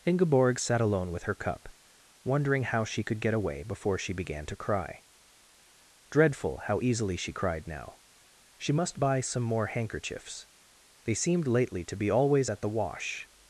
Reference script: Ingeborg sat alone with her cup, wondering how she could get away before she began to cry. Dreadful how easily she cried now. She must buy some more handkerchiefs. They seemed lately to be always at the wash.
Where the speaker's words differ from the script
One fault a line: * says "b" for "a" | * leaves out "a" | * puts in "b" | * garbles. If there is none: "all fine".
all fine